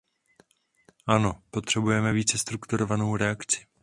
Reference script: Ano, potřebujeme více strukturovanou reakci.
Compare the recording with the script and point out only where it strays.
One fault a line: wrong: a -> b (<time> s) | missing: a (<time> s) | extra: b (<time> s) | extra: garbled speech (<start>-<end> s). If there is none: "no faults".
no faults